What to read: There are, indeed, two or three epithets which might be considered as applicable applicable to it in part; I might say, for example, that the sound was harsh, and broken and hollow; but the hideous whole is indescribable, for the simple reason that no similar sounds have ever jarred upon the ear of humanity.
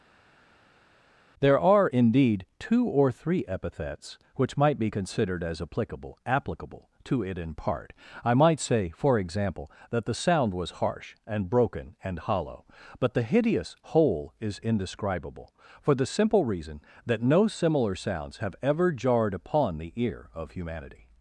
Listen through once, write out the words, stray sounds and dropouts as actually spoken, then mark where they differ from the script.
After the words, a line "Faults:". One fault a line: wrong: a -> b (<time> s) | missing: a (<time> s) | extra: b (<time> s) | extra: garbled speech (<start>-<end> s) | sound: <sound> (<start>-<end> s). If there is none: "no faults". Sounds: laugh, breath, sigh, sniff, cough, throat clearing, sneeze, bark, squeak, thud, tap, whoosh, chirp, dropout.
There are, indeed, two or three epithets which might be considered as applicable applicable to it in part; I might say, for example, that the sound was harsh, and broken and hollow; but the hideous whole is indescribable, for the simple reason that no similar sounds have ever jarred upon the ear of humanity.
Faults:
no faults